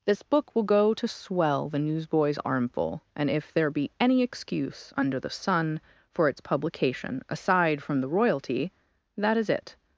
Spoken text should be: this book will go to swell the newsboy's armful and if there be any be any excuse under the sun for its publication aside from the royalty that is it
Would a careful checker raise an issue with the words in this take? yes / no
yes